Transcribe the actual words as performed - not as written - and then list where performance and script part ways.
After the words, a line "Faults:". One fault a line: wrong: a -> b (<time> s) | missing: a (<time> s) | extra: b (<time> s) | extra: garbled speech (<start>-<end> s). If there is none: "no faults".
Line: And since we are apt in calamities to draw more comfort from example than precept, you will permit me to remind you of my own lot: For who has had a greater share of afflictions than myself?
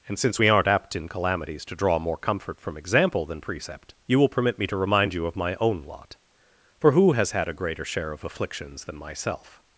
And since we aren't apt in calamities to draw more comfort from example than precept, you will permit me to remind you of my own lot: For who has had a greater share of afflictions than myself?
Faults:
wrong: are -> aren't (0.5 s)